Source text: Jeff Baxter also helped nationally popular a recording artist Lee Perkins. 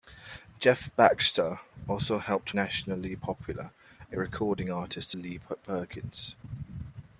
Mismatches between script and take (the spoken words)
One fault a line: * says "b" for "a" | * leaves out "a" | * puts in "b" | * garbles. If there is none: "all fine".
all fine